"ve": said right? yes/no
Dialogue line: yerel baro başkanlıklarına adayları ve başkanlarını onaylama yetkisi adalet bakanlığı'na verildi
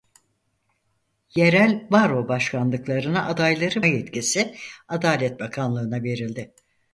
no